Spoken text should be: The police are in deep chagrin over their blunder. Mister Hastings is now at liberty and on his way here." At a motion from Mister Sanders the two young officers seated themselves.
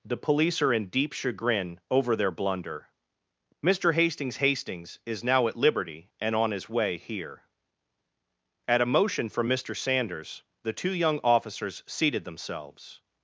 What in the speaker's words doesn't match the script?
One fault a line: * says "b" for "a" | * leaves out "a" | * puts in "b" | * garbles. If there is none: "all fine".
* puts in "Hastings"